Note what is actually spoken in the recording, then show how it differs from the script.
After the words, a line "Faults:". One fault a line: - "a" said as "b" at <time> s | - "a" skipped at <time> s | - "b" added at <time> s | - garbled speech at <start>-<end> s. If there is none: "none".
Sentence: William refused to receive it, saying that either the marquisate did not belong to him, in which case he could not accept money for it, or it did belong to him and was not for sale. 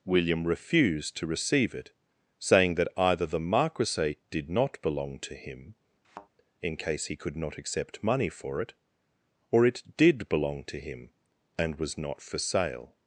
William refused to receive it, saying that either the marquisate did not belong to him, in case he could not accept money for it, or it did belong to him and was not for sale.
Faults:
- "which" skipped at 6.8 s